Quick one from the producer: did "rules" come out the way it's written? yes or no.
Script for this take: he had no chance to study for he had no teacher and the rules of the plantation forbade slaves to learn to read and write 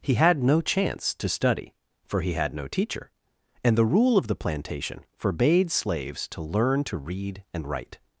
no